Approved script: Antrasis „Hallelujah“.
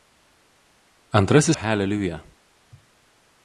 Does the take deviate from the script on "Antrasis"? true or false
false